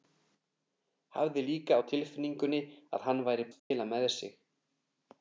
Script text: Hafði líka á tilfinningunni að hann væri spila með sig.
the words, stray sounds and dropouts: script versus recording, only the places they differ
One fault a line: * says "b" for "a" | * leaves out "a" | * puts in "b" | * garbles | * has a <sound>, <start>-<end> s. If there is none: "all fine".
* has a dropout, 3.6-3.7 s